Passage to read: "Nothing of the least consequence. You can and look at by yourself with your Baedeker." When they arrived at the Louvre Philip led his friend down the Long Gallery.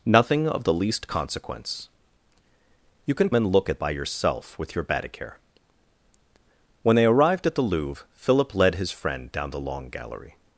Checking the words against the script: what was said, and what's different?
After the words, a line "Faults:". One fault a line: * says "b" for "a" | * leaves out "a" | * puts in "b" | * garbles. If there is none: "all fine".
"Nothing of the least consequence. You can and look at by yourself with your Baedeker." When they arrived at the Louvre Philip led his friend down the Long Gallery.
Faults:
all fine